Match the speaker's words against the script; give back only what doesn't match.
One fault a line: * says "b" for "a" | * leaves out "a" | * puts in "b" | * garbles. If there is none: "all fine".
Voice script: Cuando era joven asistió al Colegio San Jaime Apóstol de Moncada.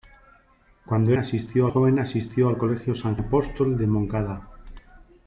* says "asistió" for "era"
* leaves out "Jaime"